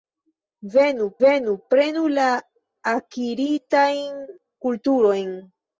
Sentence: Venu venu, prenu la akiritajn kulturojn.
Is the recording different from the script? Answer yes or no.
no